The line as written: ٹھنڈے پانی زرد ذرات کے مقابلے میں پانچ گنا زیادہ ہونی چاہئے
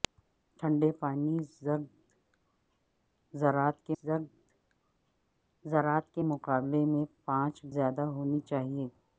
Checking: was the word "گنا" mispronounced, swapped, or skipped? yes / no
yes